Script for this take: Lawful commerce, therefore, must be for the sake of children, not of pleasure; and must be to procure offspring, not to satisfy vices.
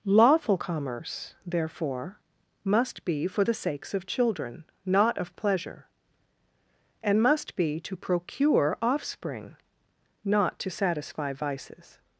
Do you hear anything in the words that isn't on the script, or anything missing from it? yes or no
yes